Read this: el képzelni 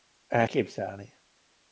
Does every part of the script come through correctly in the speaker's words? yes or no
yes